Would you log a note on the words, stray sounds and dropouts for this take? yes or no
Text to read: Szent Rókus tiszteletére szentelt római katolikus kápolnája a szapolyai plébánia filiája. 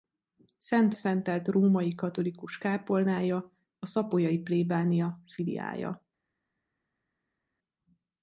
yes